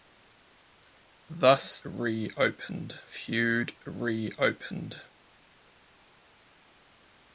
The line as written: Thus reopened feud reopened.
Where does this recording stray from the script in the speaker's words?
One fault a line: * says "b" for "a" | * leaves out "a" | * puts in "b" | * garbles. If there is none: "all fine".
all fine